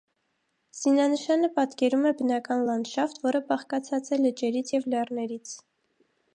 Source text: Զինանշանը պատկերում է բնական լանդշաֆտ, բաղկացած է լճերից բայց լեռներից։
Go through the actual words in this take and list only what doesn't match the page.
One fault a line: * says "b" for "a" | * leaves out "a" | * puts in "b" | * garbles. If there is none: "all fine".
* puts in "որը"
* says "և" for "բայց"